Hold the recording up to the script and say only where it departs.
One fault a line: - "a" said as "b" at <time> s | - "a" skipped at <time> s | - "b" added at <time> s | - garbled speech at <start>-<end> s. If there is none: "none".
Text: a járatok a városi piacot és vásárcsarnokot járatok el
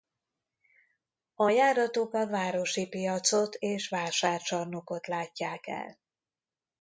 - "járatok" said as "látják" at 5.1 s